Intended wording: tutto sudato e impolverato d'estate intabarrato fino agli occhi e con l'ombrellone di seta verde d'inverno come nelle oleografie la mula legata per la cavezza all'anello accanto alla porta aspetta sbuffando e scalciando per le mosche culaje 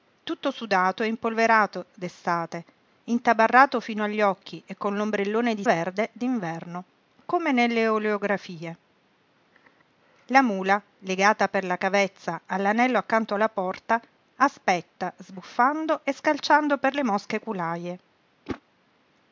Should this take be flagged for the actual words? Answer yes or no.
yes